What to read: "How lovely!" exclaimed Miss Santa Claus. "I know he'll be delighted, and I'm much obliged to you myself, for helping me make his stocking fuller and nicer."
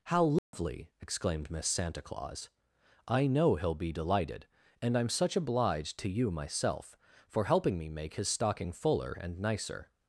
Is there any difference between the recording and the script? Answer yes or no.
yes